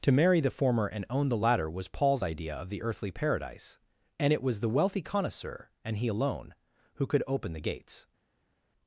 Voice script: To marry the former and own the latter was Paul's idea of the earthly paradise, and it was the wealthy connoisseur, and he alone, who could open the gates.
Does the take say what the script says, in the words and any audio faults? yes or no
yes